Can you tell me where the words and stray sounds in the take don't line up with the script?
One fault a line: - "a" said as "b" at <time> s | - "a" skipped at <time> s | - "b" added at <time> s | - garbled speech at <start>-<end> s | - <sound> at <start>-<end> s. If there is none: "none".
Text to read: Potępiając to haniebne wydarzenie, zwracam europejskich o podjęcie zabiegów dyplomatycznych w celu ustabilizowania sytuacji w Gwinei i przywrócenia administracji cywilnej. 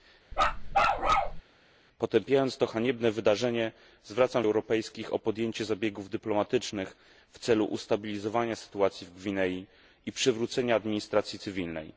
- bark at 0.3-1.4 s